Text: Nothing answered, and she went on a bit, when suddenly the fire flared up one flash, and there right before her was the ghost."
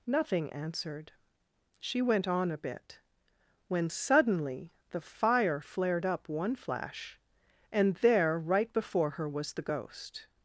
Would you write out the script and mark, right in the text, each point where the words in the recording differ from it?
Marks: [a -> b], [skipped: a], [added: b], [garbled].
Nothing answered, [skipped: and] she went on a bit, when suddenly the fire flared up one flash, and there right before her was the ghost."